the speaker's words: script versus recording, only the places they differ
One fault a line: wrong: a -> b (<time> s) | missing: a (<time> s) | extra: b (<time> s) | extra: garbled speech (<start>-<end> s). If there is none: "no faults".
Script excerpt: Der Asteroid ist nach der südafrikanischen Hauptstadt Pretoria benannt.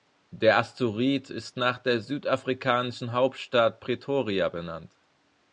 no faults